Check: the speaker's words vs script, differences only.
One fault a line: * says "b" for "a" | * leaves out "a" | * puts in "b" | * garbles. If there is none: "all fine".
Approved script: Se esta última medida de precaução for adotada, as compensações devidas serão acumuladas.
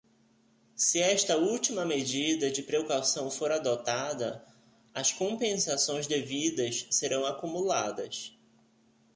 all fine